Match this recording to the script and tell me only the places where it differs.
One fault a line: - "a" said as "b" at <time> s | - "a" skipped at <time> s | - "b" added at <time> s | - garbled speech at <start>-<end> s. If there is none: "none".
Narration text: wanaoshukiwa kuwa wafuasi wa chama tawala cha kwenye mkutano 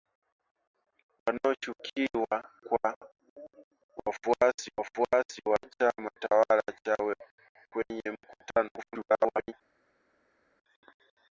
- "wafuasi" added at 4.8 s
- "cha" skipped at 6.6 s
- garbled speech at 8.8-9.5 s